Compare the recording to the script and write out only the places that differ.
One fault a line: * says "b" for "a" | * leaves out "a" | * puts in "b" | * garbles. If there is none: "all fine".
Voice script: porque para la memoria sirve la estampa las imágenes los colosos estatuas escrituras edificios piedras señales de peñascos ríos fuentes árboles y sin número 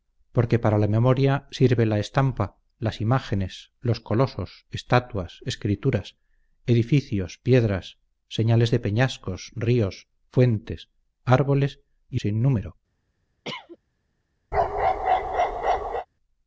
all fine